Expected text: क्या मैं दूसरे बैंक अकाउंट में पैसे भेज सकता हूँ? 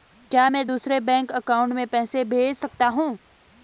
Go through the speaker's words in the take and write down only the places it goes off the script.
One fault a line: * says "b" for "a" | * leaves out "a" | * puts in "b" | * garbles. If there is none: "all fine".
all fine